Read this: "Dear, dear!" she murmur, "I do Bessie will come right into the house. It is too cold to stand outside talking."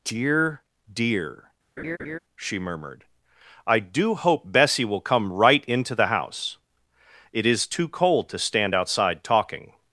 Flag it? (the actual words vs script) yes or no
yes